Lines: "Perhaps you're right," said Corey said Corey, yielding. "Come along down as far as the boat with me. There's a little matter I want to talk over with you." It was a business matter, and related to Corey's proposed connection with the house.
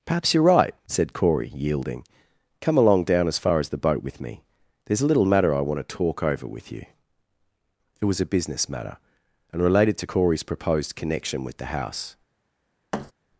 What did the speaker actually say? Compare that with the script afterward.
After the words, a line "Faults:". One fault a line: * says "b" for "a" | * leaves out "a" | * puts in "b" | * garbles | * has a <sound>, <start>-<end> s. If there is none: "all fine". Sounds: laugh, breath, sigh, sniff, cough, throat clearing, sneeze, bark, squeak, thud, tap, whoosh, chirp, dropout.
"Perhaps you're right," said Corey, yielding. "Come along down as far as the boat with me. There's a little matter I want to talk over with you." It was a business matter, and related to Corey's proposed connection with the house.
Faults:
* leaves out "said Corey"
* has a thud, 12.9-13.1 s